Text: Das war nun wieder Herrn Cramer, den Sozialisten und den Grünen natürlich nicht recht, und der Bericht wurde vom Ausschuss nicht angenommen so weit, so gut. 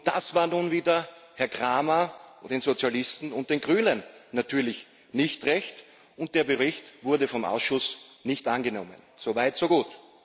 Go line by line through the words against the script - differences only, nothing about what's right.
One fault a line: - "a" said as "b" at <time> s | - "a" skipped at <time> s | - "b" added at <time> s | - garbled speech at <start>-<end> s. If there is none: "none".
none